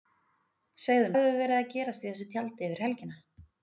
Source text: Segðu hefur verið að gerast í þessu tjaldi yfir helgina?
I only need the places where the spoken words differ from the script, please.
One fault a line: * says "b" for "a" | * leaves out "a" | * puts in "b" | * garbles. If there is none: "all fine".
all fine